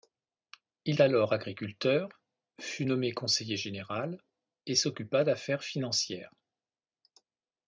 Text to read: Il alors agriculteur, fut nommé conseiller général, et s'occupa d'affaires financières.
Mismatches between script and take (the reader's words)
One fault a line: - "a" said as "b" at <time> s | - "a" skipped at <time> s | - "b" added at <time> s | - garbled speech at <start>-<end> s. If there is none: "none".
none